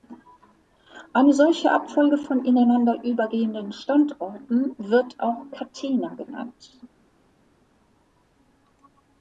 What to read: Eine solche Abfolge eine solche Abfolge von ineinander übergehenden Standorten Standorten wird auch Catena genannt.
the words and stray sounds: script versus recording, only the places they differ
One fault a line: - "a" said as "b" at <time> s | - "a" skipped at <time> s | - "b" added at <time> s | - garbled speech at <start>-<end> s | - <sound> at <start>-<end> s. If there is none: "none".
- "eine solche Abfolge" skipped at 2.2 s
- "Standorten" skipped at 4.7 s